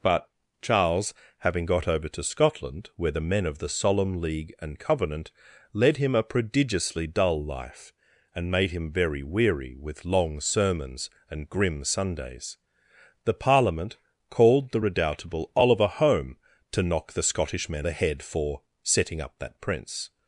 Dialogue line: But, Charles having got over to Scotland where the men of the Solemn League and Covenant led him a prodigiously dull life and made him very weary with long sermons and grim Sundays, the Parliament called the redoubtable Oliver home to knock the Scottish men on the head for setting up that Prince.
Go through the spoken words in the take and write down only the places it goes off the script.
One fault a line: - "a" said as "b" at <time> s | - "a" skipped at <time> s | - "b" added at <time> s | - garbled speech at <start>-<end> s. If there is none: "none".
- "on" skipped at 17.9 s